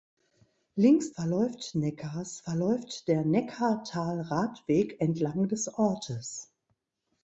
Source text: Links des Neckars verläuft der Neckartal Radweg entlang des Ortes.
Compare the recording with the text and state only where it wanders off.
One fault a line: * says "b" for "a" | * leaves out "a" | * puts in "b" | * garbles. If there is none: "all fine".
* says "verläuft" for "des"